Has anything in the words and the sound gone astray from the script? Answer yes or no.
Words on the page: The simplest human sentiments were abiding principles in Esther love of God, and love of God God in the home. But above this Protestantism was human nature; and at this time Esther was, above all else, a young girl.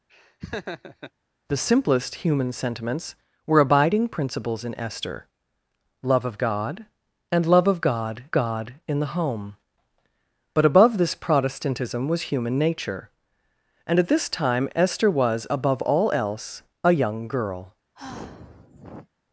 yes